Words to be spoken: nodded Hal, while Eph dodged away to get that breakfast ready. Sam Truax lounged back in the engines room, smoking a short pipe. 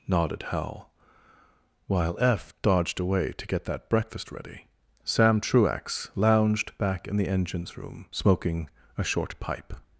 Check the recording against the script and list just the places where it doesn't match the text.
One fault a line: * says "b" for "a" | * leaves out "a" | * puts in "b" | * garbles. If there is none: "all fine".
all fine